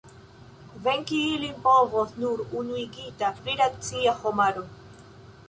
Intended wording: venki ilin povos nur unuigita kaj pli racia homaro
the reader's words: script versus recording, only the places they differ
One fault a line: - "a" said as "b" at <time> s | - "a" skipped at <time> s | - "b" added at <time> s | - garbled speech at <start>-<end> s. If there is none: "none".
- "kaj" skipped at 3.3 s